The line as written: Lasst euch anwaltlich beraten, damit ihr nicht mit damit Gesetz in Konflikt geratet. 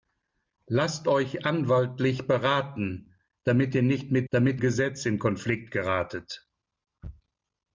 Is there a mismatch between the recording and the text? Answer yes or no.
no